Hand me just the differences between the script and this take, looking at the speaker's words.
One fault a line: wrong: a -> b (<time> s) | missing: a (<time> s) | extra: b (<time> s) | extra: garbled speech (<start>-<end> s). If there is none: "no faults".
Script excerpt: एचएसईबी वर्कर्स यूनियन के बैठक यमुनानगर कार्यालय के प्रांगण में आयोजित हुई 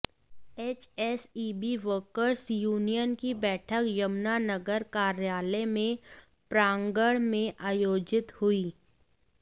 wrong: के -> की (3.2 s)